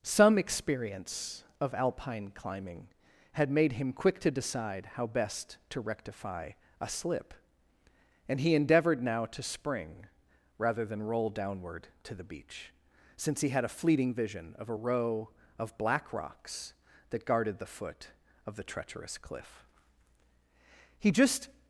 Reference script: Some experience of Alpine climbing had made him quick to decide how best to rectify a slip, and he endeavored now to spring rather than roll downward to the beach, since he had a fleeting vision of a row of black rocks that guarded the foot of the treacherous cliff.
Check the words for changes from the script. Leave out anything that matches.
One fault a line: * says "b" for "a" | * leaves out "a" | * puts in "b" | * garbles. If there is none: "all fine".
* puts in "He just"